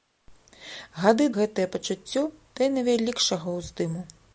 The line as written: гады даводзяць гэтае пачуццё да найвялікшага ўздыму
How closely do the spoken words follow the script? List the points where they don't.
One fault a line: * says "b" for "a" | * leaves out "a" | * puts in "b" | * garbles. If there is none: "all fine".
* leaves out "даводзяць"